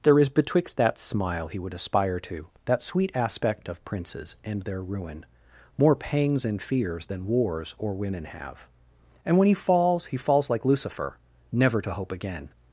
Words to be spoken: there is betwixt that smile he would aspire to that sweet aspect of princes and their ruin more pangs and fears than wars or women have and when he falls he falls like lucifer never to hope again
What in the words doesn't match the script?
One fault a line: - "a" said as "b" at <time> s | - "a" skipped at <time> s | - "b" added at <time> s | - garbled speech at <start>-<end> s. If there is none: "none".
none